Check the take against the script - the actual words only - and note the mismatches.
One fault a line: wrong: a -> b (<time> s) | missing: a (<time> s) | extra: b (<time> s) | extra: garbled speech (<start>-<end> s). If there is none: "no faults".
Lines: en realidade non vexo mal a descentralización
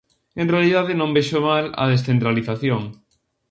no faults